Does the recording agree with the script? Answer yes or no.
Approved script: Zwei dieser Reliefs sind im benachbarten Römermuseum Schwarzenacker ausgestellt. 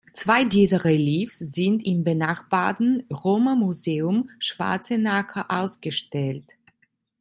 yes